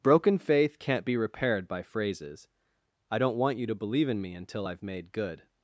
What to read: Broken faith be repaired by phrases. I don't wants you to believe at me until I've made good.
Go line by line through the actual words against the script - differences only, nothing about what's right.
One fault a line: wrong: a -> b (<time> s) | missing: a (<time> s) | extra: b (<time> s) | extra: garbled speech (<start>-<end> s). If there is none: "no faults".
extra: can't (0.8 s)
wrong: wants -> want (3.4 s)
wrong: at -> in (4.1 s)